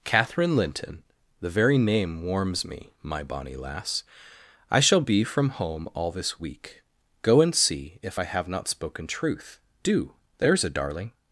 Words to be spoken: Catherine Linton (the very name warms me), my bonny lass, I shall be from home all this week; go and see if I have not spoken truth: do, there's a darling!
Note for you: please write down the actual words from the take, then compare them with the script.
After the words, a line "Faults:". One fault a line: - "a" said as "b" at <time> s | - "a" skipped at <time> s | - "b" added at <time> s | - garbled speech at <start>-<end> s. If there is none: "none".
Catherine Linton (the very name warms me), my bonny lass, I shall be from home all this week; go and see if I have not spoken truth: do, there's a darling!
Faults:
none